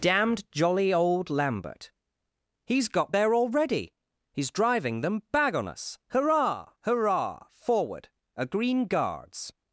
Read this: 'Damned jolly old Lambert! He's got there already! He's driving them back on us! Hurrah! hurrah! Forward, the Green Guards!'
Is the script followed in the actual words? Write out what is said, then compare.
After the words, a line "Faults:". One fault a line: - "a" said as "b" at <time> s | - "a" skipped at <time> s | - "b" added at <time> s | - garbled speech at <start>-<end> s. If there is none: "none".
'Damned jolly old Lambert! He's got there already! He's driving them bag on us! Hurrah! hurrah! Forward, a Green Guards!'
Faults:
- "back" said as "bag" at 5.3 s
- "the" said as "a" at 8.4 s